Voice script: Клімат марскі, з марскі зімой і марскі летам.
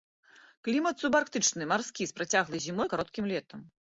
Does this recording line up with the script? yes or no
no